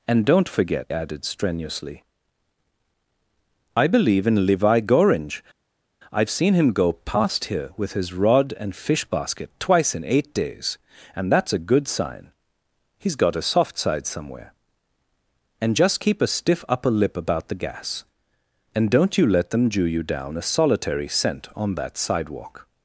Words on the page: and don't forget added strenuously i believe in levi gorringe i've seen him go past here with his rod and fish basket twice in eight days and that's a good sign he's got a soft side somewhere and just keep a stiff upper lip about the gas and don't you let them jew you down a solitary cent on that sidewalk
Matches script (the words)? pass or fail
pass